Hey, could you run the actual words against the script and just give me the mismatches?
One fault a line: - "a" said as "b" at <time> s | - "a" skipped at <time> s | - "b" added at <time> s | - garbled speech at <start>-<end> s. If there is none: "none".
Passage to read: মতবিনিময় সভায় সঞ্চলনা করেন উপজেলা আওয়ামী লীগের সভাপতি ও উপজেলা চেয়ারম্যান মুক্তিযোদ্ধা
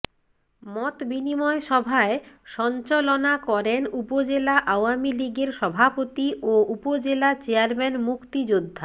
none